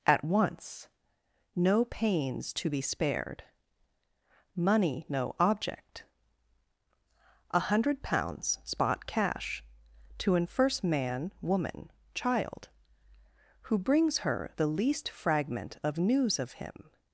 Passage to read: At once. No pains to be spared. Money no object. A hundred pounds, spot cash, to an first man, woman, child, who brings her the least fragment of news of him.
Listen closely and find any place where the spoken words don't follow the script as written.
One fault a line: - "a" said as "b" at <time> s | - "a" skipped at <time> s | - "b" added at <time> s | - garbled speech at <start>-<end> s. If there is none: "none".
none